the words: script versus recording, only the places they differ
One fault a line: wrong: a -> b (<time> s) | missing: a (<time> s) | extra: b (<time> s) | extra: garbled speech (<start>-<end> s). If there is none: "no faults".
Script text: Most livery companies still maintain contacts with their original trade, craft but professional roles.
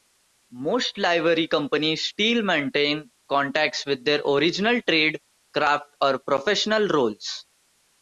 wrong: but -> or (6.0 s)